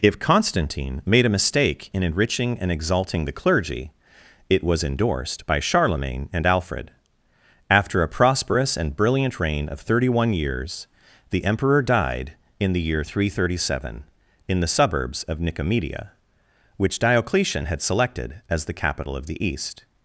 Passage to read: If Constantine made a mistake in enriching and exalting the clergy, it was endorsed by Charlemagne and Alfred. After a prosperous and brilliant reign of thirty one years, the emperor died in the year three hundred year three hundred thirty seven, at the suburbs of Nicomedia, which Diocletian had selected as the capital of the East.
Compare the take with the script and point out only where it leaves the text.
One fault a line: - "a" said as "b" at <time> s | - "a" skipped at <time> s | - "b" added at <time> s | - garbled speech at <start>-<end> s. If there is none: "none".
- "year three hundred" skipped at 13.4 s
- "at" said as "in" at 14.5 s